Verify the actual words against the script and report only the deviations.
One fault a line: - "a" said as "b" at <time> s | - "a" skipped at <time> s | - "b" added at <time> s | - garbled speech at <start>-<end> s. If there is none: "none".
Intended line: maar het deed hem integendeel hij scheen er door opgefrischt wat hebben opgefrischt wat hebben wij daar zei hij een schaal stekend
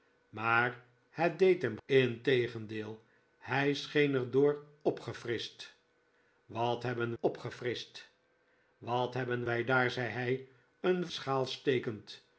none